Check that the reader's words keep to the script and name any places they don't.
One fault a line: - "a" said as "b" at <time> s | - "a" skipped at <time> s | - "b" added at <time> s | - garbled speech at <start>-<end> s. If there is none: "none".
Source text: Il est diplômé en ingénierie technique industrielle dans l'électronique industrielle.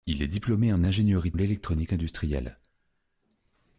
- "technique industrielle dans" skipped at 1.3 s